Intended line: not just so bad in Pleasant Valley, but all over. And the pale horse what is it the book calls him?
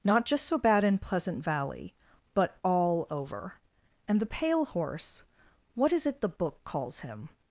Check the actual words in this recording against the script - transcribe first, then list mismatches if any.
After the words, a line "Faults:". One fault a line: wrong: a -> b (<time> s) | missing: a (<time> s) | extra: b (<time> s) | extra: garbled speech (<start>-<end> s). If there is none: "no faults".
not just so bad in Pleasant Valley, but all over. And the pale horse what is it the book calls him?
Faults:
no faults